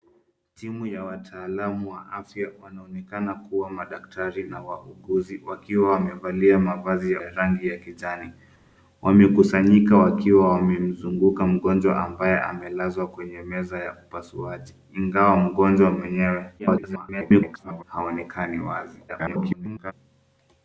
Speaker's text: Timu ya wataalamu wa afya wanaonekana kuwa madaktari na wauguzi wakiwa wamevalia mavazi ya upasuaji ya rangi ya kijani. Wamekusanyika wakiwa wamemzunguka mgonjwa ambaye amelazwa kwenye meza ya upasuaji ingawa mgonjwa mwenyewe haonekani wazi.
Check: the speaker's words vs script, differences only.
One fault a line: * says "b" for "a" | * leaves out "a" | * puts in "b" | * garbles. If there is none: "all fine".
* leaves out "upasuaji"
* garbles
* garbles